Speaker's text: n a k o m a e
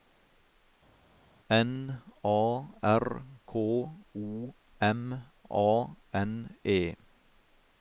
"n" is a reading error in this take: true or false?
false